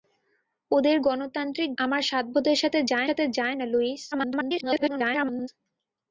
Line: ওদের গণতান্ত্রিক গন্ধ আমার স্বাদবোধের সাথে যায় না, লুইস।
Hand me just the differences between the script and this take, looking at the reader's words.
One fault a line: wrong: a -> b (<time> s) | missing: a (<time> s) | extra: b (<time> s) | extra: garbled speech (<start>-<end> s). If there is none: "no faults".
missing: গন্ধ (1.7 s)
extra: সাথে যায় (3.1 s)
extra: garbled speech (4.1-5.5 s)